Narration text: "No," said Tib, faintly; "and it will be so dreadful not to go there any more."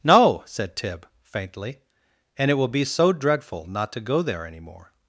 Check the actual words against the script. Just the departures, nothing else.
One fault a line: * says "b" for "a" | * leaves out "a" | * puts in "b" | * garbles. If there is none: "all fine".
all fine